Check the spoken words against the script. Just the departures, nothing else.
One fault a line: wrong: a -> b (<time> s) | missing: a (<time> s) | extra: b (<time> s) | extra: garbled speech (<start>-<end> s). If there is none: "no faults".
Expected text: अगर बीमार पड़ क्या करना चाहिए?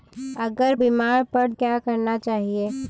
no faults